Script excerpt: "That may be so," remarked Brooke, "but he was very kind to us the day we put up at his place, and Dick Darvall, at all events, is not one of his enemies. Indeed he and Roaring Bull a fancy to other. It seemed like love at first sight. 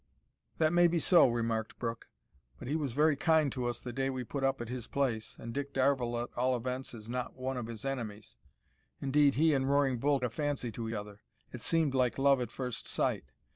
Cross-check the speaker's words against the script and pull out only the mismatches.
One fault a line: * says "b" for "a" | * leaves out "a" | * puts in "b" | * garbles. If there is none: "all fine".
all fine